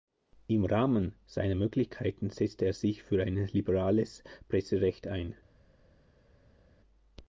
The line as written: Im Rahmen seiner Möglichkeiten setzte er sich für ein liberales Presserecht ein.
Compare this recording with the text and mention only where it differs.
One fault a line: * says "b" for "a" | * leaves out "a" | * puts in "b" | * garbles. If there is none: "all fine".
all fine